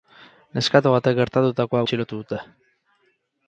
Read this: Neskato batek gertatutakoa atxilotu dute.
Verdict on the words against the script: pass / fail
pass